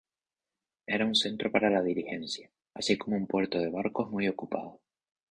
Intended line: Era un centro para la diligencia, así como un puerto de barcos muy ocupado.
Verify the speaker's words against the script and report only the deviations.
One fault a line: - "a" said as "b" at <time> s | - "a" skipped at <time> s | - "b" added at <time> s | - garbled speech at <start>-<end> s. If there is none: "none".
none